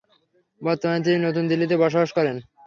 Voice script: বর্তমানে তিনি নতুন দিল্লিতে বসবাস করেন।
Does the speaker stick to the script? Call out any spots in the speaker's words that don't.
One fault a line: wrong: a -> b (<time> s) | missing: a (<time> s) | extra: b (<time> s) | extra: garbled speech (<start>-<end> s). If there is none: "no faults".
no faults